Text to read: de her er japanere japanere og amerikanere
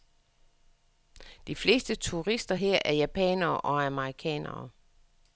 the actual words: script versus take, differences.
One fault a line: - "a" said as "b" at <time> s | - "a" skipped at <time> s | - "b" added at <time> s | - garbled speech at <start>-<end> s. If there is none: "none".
- "fleste turister" added at 1.6 s
- "japanere" skipped at 3.6 s